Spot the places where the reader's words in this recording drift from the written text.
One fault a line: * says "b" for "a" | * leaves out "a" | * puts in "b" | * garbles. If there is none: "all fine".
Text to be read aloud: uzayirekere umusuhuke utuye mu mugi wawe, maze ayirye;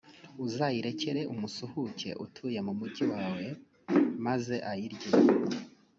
all fine